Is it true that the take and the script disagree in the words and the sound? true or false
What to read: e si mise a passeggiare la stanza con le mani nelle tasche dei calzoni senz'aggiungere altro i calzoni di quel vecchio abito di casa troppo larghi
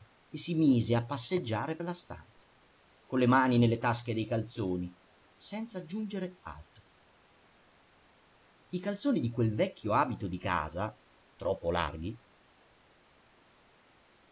false